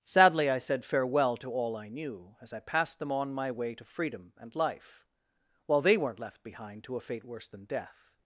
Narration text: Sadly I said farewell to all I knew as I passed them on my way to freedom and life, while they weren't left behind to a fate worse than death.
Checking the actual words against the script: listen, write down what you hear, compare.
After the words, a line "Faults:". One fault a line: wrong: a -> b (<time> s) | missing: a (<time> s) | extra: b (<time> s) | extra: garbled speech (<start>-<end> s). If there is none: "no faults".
Sadly I said farewell to all I knew as I passed them on my way to freedom and life, while they weren't left behind to a fate worse than death.
Faults:
no faults